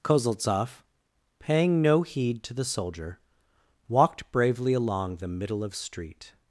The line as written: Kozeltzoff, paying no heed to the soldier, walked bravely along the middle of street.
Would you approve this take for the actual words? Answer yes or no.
yes